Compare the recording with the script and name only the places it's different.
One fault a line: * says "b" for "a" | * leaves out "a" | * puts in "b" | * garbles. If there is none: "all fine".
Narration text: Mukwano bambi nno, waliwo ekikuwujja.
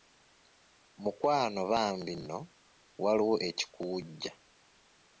all fine